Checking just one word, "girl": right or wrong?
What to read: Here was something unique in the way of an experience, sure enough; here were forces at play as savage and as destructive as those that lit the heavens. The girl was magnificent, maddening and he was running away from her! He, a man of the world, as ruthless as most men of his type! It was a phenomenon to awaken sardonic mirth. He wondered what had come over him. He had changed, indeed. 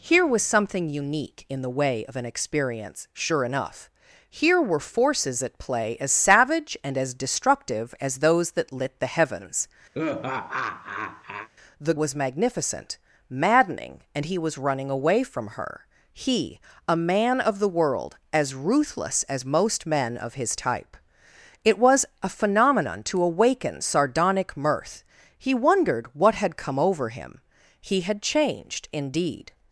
wrong